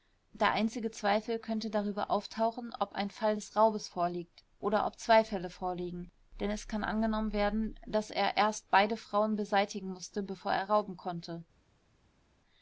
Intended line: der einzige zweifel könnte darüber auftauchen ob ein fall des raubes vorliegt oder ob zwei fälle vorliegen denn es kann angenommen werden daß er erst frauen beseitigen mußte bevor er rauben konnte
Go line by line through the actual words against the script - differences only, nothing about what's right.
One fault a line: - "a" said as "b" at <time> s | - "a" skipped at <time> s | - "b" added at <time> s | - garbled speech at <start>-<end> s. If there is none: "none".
- "beide" added at 8.7 s